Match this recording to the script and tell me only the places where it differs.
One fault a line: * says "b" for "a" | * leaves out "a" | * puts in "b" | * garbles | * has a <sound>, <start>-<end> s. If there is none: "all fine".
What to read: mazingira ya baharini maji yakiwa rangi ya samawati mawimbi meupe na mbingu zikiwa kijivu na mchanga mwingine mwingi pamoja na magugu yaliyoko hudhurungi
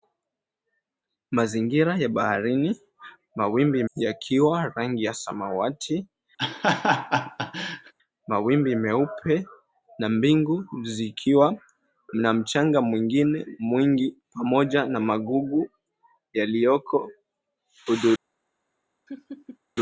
* says "mawimbi" for "maji"
* has a laugh, 6.4-7.9 s
* leaves out "kijivu"
* has a laugh, 19.1-19.6 s